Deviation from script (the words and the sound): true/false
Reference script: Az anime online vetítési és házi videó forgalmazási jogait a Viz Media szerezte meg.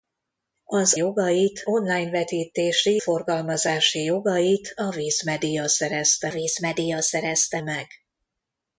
true